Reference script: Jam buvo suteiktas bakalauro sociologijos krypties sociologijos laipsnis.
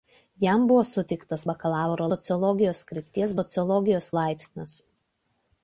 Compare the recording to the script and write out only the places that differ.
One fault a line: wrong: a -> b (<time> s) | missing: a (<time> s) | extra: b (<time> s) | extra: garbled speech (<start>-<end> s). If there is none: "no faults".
no faults